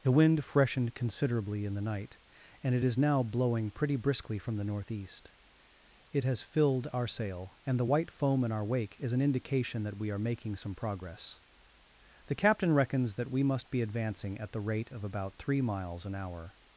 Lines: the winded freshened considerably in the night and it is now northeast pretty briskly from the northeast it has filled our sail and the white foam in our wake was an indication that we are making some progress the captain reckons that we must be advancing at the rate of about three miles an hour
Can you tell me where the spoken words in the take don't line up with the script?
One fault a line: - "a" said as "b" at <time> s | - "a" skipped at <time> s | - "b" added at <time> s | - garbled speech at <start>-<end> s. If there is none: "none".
- "winded" said as "wind" at 0.1 s
- "northeast" said as "blowing" at 3.2 s
- "was" said as "is" at 9.0 s